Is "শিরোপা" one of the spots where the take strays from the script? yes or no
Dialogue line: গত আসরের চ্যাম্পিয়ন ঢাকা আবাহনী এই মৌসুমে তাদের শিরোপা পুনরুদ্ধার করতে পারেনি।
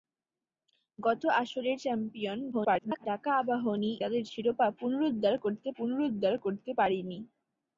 yes